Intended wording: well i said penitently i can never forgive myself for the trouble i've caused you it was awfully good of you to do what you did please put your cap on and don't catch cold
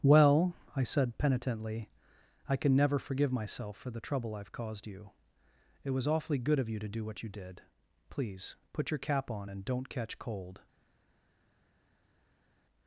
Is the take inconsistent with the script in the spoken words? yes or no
no